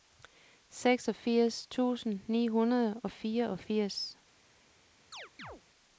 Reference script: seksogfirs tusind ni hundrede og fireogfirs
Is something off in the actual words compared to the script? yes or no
no